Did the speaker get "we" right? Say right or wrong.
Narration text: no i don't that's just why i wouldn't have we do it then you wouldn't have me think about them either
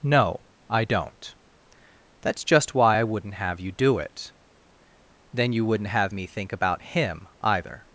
wrong